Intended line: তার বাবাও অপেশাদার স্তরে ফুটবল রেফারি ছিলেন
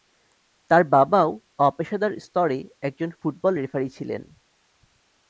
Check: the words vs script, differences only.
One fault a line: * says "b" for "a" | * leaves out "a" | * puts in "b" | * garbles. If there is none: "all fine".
* puts in "একজন"